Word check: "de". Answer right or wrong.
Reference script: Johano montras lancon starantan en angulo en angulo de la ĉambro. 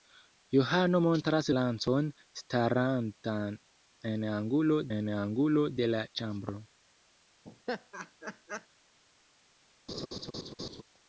right